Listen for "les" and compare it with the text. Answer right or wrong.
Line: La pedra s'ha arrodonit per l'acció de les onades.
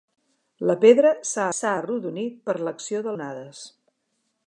wrong